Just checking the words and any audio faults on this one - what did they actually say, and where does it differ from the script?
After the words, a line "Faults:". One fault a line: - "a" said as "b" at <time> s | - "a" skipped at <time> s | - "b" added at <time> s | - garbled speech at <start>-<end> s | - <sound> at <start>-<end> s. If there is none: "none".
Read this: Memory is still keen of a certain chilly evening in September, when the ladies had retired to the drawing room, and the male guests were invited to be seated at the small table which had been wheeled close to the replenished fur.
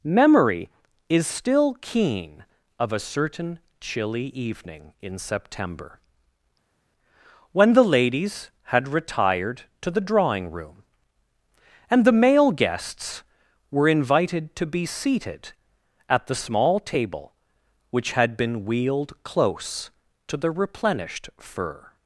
Memory is still keen of a certain chilly evening in September, when the ladies had retired to the drawing room, and the male guests were invited to be seated at the small table which had been wheeled close to the replenished fur.
Faults:
none